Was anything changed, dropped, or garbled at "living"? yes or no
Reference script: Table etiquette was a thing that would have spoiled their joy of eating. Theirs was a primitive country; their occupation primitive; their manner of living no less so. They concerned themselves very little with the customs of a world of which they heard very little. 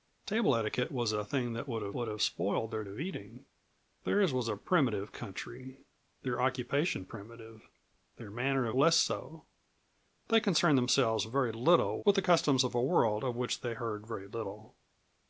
yes